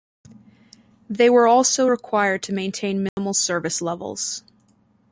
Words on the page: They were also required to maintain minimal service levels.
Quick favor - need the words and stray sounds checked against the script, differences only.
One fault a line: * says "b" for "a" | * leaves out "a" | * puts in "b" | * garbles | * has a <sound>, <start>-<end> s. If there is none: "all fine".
* has a dropout, 3.1-3.2 s